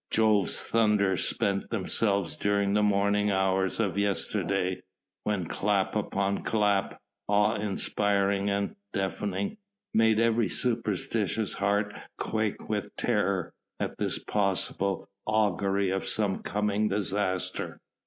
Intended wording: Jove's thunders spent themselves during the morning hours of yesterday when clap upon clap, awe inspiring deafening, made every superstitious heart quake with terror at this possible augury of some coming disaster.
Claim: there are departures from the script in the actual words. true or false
true